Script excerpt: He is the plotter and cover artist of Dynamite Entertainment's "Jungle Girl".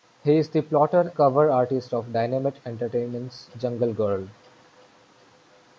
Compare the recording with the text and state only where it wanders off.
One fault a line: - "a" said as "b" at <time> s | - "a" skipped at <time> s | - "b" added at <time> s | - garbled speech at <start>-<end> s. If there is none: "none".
- "and" skipped at 1.1 s